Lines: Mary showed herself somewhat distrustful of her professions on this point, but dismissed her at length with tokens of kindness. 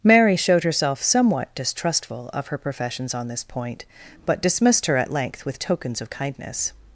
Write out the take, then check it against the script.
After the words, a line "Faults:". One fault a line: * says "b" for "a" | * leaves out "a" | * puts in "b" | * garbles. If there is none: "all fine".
Mary showed herself somewhat distrustful of her professions on this point, but dismissed her at length with tokens of kindness.
Faults:
all fine